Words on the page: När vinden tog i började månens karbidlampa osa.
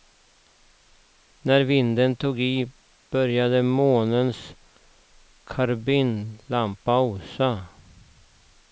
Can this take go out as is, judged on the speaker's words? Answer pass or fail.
pass